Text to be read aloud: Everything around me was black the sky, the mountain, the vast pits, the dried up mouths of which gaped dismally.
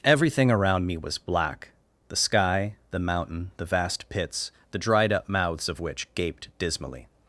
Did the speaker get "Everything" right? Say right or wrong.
right